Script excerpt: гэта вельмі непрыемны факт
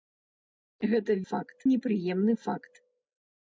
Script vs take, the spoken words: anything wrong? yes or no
yes